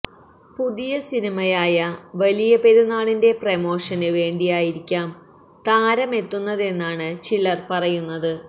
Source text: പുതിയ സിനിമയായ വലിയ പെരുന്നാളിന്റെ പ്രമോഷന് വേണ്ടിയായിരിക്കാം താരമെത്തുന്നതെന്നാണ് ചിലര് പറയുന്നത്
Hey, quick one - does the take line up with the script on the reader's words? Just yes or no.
yes